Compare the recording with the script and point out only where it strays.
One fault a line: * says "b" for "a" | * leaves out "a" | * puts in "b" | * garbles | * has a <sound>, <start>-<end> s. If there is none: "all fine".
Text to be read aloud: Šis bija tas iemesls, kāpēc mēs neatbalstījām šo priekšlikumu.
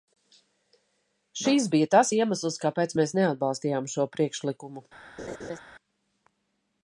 * has a laugh, 5.2-5.6 s